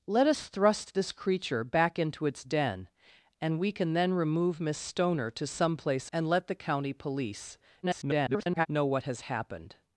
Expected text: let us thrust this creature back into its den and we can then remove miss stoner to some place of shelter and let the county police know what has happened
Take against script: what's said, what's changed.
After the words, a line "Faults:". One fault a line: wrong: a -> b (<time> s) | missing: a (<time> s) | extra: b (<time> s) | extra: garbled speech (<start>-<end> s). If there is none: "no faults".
let us thrust this creature back into its den and we can then remove miss stoner to some place and let the county police [garbled] know what has happened
Faults:
missing: of shelter (6.1 s)
extra: garbled speech (7.8-8.7 s)